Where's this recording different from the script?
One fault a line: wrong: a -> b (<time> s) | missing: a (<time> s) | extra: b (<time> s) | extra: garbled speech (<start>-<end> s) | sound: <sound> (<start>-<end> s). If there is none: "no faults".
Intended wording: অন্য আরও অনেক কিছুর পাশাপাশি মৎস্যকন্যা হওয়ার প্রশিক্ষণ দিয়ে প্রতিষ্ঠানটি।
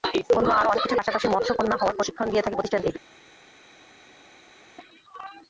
extra: থাকে (2.4 s)